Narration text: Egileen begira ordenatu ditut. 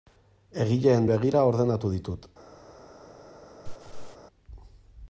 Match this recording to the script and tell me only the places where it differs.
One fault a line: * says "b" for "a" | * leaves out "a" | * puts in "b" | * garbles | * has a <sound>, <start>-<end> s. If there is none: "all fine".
* has a laugh, 3.6-4.2 s